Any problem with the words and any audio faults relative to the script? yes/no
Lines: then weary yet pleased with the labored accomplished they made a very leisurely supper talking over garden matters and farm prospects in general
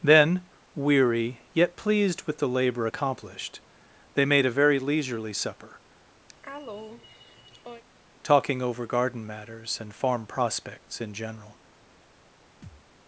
yes